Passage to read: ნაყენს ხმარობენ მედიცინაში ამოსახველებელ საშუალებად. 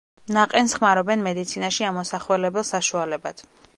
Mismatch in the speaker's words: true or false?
false